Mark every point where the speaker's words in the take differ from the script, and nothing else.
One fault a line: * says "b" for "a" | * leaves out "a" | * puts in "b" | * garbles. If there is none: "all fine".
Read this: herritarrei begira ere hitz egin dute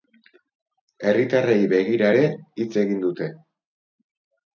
all fine